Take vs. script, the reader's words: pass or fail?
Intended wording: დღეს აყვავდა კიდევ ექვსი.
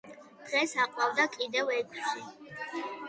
pass